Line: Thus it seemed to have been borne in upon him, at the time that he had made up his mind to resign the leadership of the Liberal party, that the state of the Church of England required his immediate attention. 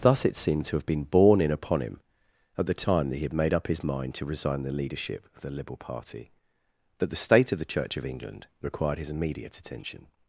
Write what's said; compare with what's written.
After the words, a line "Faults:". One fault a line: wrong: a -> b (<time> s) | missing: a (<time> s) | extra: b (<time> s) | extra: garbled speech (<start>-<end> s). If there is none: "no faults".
Thus it seemed to have been borne in upon him, at the time that he had made up his mind to resign the leadership of the Liberal party, that the state of the Church of England required his immediate attention.
Faults:
no faults